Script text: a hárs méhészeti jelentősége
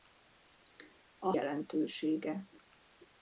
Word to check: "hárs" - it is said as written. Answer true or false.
false